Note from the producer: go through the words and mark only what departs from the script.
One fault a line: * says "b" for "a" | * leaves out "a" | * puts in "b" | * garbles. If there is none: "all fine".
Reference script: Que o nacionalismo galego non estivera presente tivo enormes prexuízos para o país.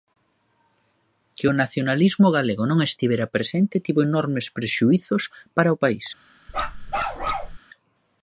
all fine